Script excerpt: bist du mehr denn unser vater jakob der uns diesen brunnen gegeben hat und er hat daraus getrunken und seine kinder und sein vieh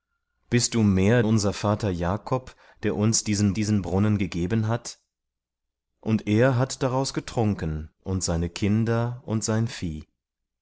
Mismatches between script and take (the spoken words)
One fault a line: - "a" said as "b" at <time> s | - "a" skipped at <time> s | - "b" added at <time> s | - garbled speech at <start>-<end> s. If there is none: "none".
- "denn" skipped at 1.2 s
- "diesen" added at 3.5 s